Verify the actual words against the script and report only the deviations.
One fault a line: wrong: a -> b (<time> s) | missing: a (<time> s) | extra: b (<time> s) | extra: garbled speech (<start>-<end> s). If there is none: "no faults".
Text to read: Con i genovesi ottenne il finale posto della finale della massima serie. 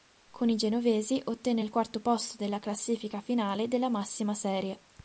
wrong: finale -> quarto (1.7 s)
extra: classifica (2.6 s)